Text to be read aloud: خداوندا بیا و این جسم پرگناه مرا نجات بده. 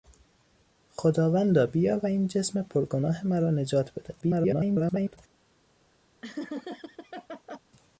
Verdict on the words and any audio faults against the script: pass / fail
fail